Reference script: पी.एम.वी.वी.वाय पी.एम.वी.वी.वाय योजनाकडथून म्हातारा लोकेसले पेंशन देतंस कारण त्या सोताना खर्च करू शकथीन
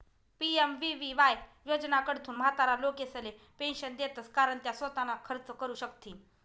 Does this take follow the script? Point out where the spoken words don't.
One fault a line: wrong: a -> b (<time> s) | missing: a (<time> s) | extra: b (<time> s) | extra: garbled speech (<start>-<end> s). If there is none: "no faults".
missing: पी.एम.वी.वी.वाय (1.4 s)